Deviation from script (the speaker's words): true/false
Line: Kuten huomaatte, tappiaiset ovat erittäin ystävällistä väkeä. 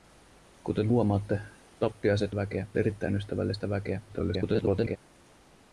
true